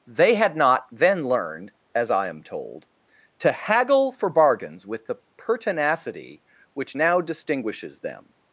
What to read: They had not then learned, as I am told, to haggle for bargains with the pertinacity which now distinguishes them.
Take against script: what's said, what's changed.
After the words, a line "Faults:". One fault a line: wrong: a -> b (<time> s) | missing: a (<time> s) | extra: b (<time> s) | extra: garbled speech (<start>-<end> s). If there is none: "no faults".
They had not then learned, as I am told, to haggle for bargains with the pertinacity which now distinguishes them.
Faults:
no faults